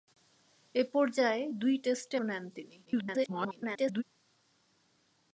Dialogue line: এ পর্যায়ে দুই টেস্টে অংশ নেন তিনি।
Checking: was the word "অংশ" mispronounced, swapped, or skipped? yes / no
yes